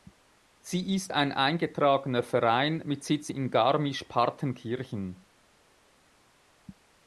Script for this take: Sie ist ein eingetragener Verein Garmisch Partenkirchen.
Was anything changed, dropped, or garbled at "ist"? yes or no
no